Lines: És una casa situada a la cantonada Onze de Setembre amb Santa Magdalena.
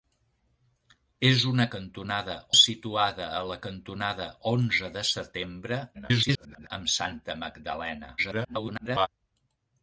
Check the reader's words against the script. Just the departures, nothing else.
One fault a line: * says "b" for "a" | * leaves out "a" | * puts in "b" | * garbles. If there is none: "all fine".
* says "cantonada" for "casa"
* garbles
* garbles